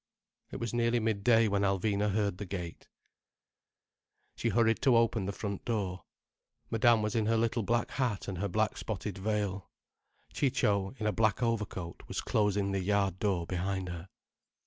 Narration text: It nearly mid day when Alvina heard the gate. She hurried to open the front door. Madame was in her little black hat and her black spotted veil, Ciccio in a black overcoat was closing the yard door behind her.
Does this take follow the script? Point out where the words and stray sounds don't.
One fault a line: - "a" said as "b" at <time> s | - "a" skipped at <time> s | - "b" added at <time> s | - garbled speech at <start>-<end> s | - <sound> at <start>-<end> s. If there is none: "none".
- "was" added at 0.6 s